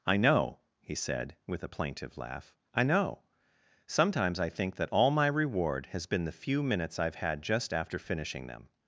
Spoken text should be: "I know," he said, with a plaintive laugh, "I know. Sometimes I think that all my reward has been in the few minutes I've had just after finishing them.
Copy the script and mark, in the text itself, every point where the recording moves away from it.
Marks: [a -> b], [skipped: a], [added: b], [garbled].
"I know," he said, with a plaintive laugh, "I know. Sometimes I think that all my reward has been [skipped: in] the few minutes I've had just after finishing them.